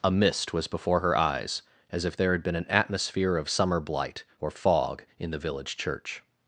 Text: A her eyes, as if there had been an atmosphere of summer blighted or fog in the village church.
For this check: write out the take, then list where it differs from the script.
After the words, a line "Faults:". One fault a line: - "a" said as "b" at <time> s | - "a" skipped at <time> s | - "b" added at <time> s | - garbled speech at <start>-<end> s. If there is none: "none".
A mist was before her eyes, as if there had been an atmosphere of summer blight or fog in the village church.
Faults:
- "mist was before" added at 0.1 s
- "blighted" said as "blight" at 3.8 s